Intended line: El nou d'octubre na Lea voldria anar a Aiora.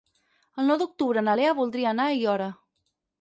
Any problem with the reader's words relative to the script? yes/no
no